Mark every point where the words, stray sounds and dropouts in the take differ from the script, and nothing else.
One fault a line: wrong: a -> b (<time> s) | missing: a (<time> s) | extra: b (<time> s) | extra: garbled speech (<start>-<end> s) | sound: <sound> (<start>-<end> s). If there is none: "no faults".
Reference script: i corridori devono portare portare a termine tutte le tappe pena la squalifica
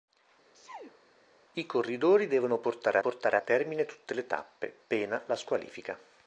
sound: sneeze (0.5-1.0 s)